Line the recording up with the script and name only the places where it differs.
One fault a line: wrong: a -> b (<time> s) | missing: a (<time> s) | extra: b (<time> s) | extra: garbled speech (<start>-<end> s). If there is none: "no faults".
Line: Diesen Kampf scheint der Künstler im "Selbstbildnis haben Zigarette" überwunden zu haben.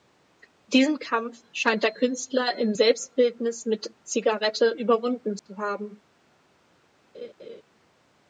wrong: haben -> mit (3.7 s)